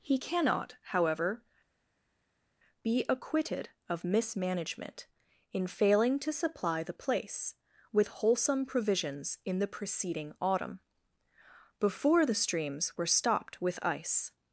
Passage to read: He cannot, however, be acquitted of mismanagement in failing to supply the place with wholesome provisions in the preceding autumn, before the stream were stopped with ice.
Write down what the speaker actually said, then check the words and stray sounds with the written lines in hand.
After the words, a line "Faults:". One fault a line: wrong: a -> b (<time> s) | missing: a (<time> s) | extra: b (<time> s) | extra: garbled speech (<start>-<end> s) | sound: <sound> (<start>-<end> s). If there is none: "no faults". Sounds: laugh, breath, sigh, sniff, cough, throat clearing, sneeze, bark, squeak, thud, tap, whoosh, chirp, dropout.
He cannot, however, be acquitted of mismanagement in failing to supply the place with wholesome provisions in the preceding autumn, before the streams were stopped with ice.
Faults:
wrong: stream -> streams (12.3 s)